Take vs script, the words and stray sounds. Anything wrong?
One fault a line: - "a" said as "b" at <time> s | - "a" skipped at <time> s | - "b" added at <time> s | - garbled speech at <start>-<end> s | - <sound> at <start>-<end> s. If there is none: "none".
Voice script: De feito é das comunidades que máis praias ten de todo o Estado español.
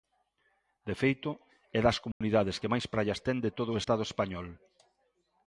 - dropout at 2.1-2.2 s